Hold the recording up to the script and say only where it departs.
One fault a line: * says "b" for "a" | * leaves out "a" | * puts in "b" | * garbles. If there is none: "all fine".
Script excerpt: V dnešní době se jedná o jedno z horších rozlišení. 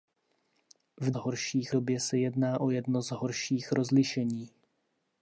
* says "horších" for "dnešní"